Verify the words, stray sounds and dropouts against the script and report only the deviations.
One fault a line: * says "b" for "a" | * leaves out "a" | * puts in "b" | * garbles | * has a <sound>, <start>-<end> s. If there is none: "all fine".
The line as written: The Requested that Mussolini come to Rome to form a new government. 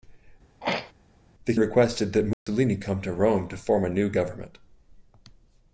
* has a throat clearing, 0.6-0.9 s
* has a dropout, 2.3-2.5 s